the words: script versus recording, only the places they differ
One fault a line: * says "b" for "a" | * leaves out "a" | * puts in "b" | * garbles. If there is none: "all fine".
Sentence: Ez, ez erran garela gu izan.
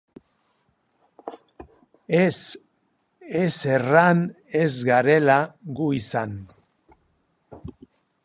* puts in "ez"